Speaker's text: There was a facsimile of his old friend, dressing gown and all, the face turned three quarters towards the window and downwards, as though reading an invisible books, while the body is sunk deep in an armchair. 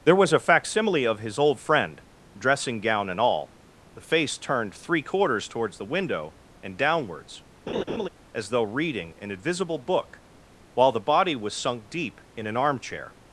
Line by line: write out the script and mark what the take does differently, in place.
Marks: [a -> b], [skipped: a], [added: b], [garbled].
There was a facsimile of his old friend, dressing gown and all, the face turned three quarters towards the window and downwards, as though reading an invisible [books, -> book] while the body [is -> was] sunk deep in an armchair.